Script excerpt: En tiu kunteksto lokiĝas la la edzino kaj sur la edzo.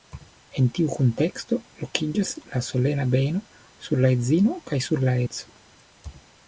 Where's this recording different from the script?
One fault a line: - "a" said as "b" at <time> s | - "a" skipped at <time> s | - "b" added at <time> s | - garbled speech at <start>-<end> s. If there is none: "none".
- "solena beno sur" added at 2.7 s